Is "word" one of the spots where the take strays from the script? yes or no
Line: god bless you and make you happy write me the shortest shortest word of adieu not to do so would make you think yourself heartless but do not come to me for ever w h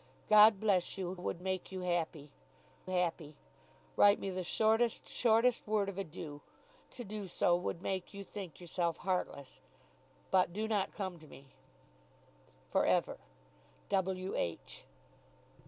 no